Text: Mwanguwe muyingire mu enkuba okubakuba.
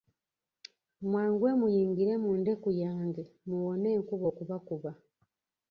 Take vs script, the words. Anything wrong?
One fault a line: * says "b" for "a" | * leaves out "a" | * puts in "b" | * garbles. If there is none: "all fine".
* puts in "ndeku yange muwone"